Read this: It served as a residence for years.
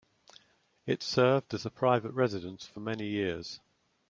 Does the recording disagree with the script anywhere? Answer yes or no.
yes